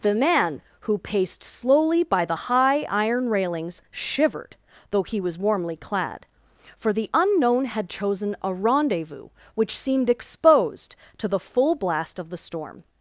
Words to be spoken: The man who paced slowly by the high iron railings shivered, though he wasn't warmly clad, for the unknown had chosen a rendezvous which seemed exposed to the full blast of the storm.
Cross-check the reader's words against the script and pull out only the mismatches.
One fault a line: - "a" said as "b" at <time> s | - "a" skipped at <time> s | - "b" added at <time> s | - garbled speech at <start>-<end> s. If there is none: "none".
- "wasn't" said as "was" at 5.2 s